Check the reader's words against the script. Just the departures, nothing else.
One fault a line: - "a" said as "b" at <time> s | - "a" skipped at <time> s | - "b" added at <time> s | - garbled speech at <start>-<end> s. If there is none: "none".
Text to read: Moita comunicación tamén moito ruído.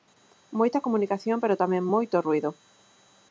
- "pero" added at 1.4 s